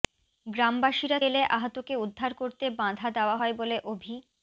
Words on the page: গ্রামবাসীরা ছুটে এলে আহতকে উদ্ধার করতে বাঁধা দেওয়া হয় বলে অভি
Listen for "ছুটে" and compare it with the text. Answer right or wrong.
wrong